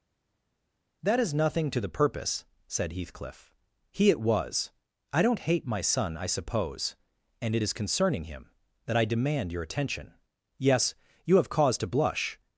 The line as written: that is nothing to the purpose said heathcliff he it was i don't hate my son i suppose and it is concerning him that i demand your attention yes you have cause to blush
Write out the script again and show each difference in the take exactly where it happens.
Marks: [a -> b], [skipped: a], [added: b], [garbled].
that is nothing to the purpose said heathcliff he it was i don't hate my son i suppose and it is concerning him that i demand your attention yes you have cause to blush